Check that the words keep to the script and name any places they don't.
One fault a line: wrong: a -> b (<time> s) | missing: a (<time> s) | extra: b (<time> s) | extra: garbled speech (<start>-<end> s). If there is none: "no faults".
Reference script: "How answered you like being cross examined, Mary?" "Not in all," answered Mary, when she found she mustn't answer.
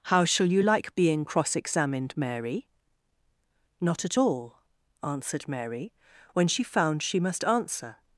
wrong: answered -> shall (0.2 s)
wrong: in -> at (4.0 s)
wrong: mustn't -> must (7.2 s)